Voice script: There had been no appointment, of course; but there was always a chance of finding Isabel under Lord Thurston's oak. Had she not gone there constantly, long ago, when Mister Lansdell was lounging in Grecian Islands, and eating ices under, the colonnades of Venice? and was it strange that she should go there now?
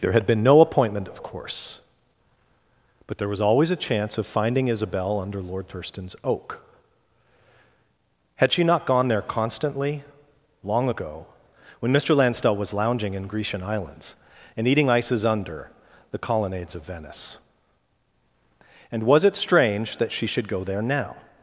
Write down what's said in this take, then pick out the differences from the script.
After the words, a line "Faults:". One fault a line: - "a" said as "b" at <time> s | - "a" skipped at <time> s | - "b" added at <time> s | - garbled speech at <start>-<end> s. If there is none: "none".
There had been no appointment, of course; but there was always a chance of finding Isabel under Lord Thurston's oak. Had she not gone there constantly, long ago, when Mister Lansdell was lounging in Grecian Islands, and eating ices under, the colonnades of Venice? and was it strange that she should go there now?
Faults:
none